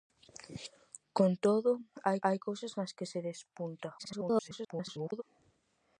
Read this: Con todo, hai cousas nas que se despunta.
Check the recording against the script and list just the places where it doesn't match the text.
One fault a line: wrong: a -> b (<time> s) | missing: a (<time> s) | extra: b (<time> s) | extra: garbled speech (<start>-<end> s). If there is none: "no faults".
extra: hai (2.3 s)
extra: garbled speech (4.0-5.2 s)